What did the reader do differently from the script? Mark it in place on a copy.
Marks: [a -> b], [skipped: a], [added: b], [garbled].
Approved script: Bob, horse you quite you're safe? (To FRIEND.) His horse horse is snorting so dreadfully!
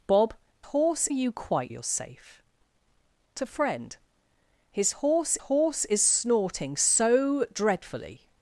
Bob, horse you quite you're safe? (To FRIEND.) His horse horse is snorting so dreadfully!